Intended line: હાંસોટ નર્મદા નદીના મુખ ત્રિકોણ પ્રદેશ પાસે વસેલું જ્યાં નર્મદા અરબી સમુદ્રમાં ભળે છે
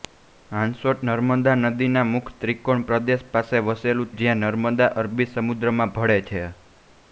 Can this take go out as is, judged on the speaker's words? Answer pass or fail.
pass